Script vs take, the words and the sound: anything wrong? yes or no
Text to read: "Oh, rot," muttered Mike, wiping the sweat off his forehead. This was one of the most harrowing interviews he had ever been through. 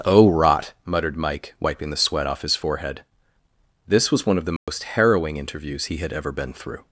yes